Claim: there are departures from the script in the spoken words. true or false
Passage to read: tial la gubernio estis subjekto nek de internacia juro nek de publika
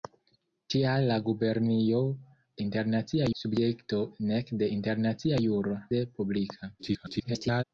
true